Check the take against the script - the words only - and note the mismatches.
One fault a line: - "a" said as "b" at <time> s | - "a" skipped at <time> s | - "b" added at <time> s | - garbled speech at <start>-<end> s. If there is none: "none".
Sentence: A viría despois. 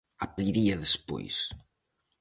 none